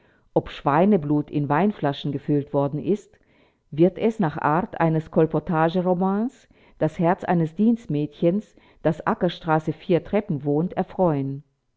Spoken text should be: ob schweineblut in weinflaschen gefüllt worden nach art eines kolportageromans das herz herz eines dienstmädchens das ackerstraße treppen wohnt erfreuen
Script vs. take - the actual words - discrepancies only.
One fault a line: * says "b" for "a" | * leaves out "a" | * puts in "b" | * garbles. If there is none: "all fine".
* puts in "ist wird es"
* leaves out "herz"
* puts in "vier"